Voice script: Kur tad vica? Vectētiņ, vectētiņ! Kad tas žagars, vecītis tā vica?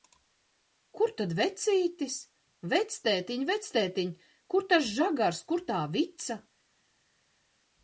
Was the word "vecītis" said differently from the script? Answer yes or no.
yes